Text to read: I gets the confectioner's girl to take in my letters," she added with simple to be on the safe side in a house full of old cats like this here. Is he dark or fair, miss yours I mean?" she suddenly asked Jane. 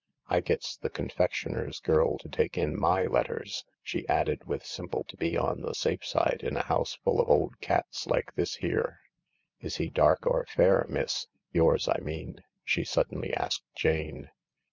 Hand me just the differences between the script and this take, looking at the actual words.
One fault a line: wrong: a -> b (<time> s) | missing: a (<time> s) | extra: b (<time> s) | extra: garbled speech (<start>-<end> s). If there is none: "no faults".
no faults